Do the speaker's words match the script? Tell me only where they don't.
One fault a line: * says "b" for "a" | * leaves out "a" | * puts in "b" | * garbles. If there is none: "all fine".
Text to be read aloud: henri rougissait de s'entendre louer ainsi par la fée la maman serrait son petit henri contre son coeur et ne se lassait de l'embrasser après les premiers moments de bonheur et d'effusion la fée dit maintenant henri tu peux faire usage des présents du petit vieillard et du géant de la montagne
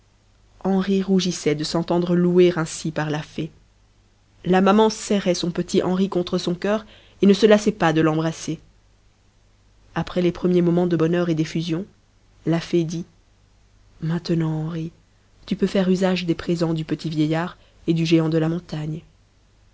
* puts in "pas"